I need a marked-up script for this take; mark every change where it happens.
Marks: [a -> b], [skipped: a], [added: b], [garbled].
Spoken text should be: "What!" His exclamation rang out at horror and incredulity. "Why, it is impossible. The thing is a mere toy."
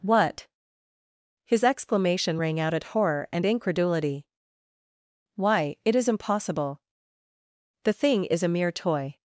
"What!" His exclamation rang out at horror and incredulity. "Why, it is impossible. The thing is a mere toy."